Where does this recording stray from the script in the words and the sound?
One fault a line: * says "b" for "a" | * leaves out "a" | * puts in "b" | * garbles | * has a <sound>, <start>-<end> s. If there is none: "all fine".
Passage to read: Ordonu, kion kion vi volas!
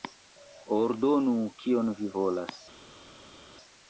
* leaves out "kion"